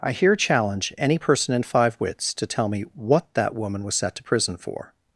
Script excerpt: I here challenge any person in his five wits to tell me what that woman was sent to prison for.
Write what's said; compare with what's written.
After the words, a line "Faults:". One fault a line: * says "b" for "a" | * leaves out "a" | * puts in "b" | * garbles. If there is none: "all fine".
I here challenge any person in five wits to tell me what that woman was set to prison for.
Faults:
* leaves out "his"
* says "set" for "sent"